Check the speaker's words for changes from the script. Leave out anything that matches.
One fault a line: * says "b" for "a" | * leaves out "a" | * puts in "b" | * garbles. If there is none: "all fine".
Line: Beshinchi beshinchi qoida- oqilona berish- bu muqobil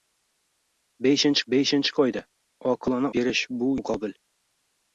all fine